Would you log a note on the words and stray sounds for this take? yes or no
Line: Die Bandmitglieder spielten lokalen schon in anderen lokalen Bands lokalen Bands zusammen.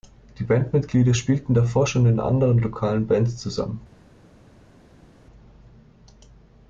yes